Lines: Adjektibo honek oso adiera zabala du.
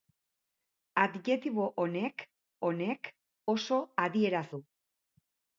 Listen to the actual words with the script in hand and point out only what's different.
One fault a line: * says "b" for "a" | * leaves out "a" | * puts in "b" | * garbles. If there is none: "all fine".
* puts in "honek"
* leaves out "zabala"